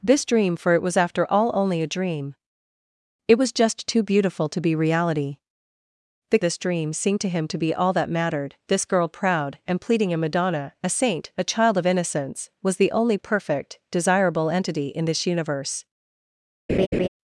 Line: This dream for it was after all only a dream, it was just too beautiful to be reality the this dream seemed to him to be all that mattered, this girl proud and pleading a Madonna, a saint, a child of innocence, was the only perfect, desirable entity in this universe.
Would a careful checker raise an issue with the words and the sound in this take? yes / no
yes